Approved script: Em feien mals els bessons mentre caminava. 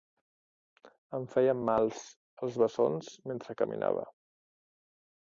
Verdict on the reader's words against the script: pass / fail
pass